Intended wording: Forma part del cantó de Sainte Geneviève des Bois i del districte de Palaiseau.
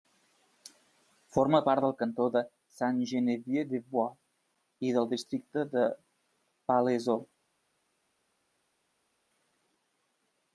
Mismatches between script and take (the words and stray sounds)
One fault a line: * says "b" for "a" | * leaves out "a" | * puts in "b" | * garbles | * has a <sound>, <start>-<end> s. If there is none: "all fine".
all fine